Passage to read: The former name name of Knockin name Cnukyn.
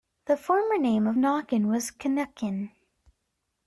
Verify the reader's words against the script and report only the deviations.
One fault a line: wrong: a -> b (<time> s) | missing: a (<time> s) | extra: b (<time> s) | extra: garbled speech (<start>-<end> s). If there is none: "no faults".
missing: name (1.1 s)
wrong: name -> was (1.7 s)